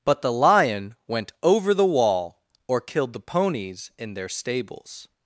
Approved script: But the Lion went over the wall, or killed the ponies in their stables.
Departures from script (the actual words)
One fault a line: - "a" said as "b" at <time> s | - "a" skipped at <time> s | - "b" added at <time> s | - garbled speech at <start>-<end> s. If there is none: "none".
none